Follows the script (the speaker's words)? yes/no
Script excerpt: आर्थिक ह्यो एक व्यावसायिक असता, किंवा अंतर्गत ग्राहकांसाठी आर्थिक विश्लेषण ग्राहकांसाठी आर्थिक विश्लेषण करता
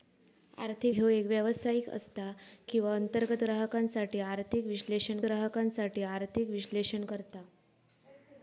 yes